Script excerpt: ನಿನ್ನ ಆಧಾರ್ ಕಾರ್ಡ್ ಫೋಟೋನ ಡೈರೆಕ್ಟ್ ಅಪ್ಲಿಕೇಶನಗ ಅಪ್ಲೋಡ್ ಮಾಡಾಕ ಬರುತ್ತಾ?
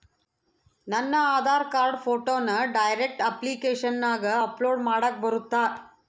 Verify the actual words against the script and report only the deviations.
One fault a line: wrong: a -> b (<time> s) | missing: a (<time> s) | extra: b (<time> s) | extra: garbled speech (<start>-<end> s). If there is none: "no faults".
wrong: ನಿನ್ನ -> ನನ್ನ (0.9 s)